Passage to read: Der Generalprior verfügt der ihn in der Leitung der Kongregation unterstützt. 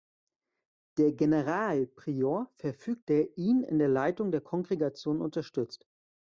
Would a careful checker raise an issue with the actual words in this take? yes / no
no